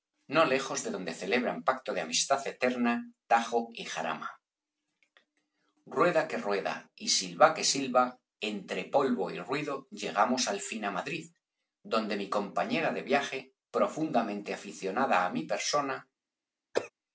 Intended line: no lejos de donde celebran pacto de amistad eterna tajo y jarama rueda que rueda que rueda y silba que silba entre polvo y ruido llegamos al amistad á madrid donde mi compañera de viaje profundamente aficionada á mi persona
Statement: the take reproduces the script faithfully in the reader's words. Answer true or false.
false